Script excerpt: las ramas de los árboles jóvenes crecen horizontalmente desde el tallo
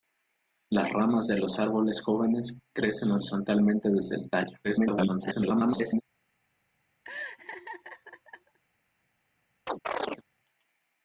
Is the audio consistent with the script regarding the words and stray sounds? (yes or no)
no